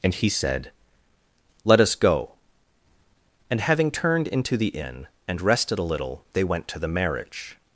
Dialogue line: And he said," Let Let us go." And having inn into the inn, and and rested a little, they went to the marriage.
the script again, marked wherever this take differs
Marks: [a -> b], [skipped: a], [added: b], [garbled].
And he said," Let [skipped: Let] us go." And having [inn -> turned] into the inn, and [skipped: and] rested a little, they went to the marriage.